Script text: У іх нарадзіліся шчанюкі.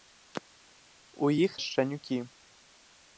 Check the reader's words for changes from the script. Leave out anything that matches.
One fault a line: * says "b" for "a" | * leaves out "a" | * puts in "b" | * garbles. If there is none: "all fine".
* leaves out "нарадзіліся"